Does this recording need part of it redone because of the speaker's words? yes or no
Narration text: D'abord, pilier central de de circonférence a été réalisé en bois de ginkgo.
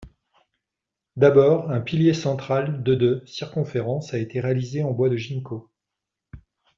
yes